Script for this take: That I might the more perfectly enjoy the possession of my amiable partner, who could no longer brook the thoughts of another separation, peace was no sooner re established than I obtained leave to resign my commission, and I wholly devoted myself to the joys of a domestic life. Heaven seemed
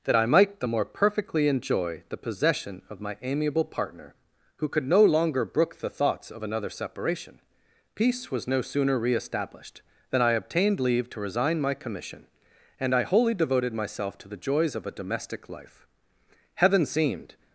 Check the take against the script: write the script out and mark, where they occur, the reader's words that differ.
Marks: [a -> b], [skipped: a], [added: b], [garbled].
That I might the more perfectly enjoy the possession of my amiable partner, who could no longer brook the thoughts of another separation, peace was no sooner re established than I obtained leave to resign my commission, and I wholly devoted myself to the joys of a domestic life. Heaven seemed